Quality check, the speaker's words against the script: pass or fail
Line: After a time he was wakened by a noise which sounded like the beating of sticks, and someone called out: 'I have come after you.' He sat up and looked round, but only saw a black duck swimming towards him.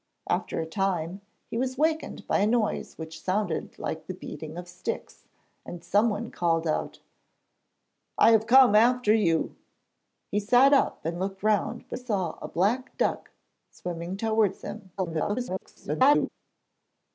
fail